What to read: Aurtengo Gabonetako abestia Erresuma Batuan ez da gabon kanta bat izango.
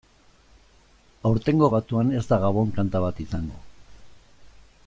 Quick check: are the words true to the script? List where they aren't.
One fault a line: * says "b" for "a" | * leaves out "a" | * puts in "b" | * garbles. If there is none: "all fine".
* leaves out "Gabonetako abestia Erresuma"